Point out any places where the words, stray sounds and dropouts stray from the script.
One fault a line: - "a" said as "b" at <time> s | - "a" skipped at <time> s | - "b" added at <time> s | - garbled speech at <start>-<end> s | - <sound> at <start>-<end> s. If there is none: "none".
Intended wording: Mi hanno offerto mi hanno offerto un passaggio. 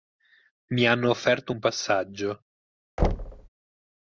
- "mi hanno offerto" skipped at 1.5 s
- thud at 3.0-3.5 s